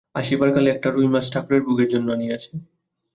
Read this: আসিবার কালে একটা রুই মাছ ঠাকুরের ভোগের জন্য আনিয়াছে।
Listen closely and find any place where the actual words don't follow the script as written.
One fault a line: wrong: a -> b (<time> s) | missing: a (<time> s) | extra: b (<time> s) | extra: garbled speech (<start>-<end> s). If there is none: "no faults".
no faults